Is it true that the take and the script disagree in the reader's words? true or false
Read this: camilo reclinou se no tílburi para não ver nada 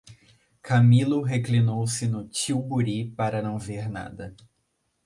false